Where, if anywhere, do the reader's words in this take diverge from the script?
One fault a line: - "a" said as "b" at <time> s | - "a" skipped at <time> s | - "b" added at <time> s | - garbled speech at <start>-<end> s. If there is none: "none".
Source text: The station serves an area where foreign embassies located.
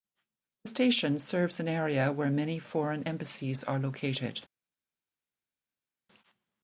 - "many" added at 2.3 s
- "are" added at 3.6 s